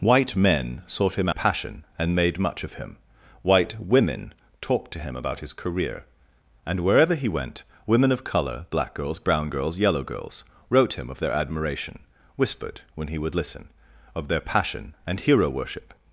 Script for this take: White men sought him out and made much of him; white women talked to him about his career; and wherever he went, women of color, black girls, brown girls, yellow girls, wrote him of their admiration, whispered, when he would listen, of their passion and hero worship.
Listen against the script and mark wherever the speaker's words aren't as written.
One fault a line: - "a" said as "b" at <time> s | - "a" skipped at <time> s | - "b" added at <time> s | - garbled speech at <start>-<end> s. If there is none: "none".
- "out" said as "passion" at 1.3 s